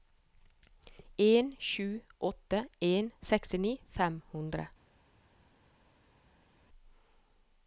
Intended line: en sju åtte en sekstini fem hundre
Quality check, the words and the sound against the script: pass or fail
pass